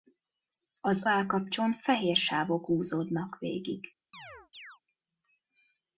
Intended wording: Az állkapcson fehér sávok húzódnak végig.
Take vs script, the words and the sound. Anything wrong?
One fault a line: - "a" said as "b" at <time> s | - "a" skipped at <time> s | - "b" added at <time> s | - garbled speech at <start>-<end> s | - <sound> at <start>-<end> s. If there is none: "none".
- chirp at 4.1-4.8 s